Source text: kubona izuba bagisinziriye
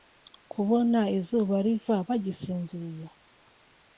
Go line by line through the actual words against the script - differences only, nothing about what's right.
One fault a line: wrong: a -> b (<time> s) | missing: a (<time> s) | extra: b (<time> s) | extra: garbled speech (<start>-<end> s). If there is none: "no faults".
extra: riva (1.6 s)